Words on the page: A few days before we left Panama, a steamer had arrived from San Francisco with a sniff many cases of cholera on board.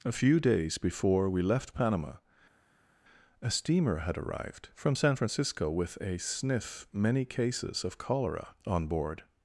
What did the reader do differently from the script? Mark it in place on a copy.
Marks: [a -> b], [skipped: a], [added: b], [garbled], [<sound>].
A few days before we left Panama, a steamer had arrived from San Francisco with a sniff many cases of cholera on board.